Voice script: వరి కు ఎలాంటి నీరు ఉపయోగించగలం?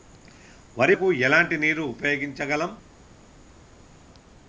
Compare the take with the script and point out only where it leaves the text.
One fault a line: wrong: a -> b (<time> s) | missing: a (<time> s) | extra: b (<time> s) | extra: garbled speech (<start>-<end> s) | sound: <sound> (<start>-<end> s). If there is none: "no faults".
no faults